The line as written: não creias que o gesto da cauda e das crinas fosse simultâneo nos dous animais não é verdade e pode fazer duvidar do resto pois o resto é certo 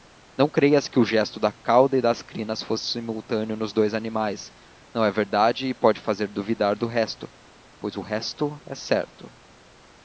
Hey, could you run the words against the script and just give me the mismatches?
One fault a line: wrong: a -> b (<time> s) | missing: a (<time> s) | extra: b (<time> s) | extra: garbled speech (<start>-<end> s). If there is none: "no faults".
no faults